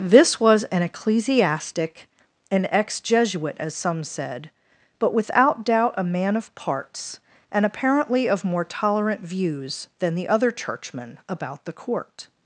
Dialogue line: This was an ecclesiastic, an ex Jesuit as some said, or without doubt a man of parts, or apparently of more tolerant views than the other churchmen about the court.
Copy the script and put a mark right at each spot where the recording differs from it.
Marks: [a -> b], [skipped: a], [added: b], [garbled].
This was an ecclesiastic, an ex Jesuit as some said, [or -> but] without doubt a man of parts, [or -> and] apparently of more tolerant views than the other churchmen about the court.